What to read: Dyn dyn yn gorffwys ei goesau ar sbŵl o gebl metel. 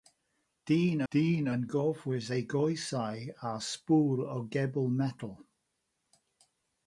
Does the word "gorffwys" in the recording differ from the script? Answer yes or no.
no